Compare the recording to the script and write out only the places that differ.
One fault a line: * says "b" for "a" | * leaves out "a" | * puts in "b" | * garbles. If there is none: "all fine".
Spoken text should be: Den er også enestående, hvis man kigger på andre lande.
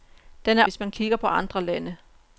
* leaves out "også enestående"